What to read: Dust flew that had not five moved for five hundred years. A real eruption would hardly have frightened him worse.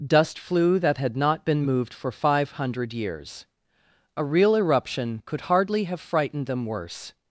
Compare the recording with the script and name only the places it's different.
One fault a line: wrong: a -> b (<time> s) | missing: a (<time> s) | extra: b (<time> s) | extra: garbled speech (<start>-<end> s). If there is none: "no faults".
wrong: five -> been (1.4 s)
wrong: would -> could (5.2 s)
wrong: him -> them (6.5 s)